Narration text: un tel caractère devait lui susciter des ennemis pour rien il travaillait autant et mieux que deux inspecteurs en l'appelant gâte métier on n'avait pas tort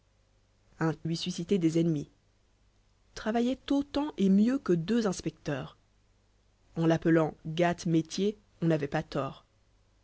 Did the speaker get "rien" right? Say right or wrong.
wrong